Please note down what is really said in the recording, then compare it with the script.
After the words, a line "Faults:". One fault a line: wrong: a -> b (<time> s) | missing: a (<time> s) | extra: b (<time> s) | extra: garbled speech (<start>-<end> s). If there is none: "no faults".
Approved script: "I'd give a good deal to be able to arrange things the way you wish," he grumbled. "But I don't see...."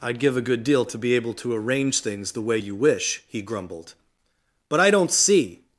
"I'd give a good deal to be able to arrange things the way you wish," he grumbled. "But I don't see...."
Faults:
no faults